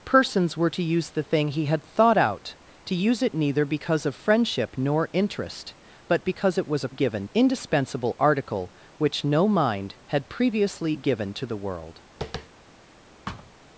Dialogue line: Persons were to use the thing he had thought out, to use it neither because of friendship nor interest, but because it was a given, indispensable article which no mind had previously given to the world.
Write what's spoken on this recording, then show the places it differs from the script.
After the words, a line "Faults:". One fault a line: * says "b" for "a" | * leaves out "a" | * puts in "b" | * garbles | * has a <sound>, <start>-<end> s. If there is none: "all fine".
Persons were to use the thing he had thought out, to use it neither because of friendship nor interest, but because it was a given, indispensable article which no mind had previously given to the world.
Faults:
* has a tap, 12.2-12.5 s
* has a thud, 13.3-13.5 s